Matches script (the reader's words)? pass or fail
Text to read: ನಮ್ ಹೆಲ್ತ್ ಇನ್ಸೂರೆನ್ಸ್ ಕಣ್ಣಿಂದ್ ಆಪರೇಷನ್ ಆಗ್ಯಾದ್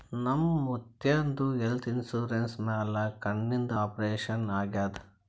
fail